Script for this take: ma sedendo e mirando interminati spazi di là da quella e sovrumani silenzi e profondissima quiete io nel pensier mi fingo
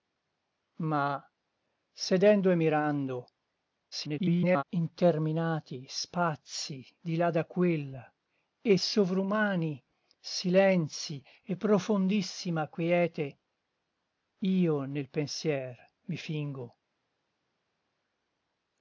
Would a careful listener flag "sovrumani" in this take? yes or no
no